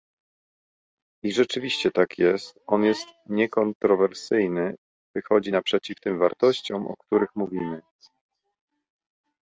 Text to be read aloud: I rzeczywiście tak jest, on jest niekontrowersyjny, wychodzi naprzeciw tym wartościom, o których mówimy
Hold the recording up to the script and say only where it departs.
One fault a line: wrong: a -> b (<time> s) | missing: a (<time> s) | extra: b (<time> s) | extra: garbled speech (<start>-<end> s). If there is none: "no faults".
no faults